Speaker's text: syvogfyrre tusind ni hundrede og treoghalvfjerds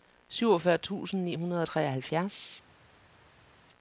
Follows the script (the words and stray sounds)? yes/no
yes